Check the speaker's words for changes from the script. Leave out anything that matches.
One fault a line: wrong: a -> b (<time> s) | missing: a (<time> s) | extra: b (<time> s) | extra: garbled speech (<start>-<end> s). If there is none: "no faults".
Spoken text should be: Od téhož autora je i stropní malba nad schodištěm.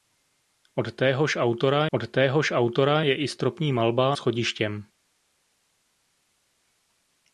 extra: od téhož autora (1.9 s)
missing: nad (4.1 s)